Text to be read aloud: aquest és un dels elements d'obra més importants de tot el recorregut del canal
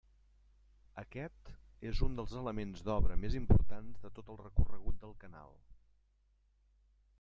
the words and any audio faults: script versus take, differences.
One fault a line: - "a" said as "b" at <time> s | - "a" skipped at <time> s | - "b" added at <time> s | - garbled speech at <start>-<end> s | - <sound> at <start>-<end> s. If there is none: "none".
none